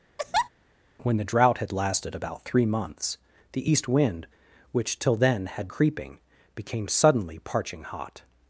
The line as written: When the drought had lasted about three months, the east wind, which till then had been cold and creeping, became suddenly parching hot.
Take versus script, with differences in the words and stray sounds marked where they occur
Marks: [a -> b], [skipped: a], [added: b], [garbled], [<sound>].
[laugh] When the drought had lasted about three months, the east wind, which till then had [skipped: been cold and] creeping, became suddenly parching hot.